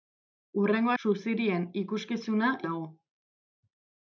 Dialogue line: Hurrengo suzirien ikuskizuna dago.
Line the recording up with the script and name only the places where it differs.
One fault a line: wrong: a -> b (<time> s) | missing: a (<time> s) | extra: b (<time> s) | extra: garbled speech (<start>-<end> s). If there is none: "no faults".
no faults